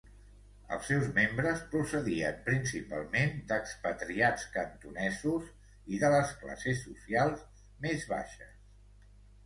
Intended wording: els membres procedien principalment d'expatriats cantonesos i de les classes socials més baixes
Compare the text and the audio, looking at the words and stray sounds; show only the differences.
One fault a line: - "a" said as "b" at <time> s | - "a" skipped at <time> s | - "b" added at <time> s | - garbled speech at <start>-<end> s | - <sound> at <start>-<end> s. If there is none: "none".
- "seus" added at 0.9 s